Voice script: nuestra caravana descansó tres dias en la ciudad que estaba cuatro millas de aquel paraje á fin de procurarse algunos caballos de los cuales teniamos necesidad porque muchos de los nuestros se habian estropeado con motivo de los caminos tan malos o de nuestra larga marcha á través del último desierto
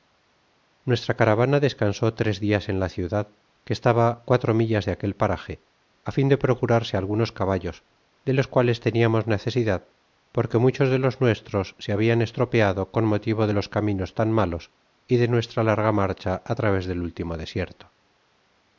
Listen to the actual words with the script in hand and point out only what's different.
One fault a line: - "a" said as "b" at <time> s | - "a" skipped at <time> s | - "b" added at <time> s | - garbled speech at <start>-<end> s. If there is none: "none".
- "o" said as "y" at 15.0 s